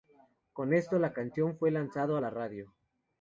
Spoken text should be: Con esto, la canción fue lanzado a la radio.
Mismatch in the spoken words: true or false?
false